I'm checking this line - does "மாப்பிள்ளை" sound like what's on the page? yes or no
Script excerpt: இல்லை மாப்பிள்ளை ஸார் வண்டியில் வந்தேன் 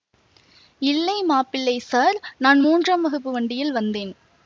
yes